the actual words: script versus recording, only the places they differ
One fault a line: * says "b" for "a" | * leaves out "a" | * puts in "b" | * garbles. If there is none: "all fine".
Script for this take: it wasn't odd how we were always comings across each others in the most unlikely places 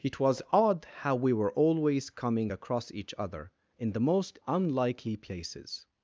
* says "was" for "wasn't"
* says "coming" for "comings"
* says "other" for "others"